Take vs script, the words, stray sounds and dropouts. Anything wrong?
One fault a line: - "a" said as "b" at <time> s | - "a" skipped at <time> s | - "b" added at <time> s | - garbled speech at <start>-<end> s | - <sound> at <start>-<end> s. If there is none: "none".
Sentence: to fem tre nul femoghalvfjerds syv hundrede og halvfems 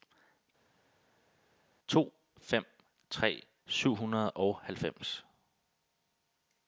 - "nul femoghalvfjerds" skipped at 3.5 s